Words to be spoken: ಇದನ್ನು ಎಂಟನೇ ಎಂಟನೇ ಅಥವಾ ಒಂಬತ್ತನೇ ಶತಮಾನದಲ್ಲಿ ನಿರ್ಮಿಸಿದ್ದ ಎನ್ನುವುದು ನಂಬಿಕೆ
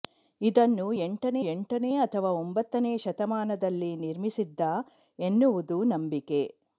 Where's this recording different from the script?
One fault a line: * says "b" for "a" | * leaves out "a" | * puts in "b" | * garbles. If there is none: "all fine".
all fine